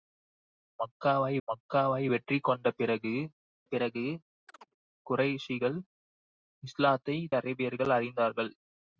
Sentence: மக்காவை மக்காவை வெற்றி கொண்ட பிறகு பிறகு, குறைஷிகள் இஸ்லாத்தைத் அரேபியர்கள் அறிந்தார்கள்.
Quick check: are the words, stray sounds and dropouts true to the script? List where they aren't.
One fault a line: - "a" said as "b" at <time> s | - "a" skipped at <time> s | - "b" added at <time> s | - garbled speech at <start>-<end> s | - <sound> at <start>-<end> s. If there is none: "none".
- chirp at 4.5-4.7 s